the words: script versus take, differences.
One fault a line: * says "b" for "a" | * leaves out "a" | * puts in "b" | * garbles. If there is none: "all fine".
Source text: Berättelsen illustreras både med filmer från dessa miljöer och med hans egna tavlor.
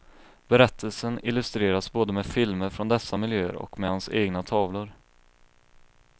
all fine